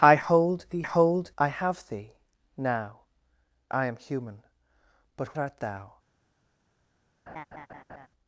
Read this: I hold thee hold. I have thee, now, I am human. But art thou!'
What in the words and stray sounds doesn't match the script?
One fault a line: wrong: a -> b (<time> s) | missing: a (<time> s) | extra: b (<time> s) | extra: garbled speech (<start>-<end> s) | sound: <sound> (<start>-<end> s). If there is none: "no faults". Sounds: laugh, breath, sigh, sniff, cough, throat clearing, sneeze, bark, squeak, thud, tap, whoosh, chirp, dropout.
sound: laugh (7.3-8.1 s)